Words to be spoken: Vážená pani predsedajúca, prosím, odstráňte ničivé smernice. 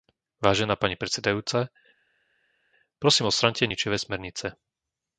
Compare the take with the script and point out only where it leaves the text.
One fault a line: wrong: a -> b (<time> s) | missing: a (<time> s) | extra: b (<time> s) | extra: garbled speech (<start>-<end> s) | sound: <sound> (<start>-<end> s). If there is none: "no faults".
no faults